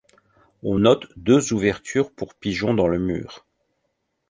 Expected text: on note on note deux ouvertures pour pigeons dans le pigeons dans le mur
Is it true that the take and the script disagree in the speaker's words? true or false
true